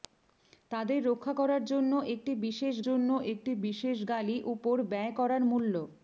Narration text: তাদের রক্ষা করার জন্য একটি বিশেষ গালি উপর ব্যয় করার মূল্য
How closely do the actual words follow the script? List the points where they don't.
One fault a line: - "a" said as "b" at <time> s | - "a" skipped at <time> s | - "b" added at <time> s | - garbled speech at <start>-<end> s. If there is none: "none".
- "জন্য একটি বিশেষ" added at 2.8 s